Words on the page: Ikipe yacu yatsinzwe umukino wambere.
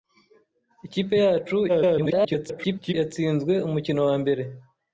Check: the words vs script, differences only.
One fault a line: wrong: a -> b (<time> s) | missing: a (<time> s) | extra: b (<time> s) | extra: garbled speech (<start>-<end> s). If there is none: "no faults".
extra: garbled speech (1.7-2.9 s)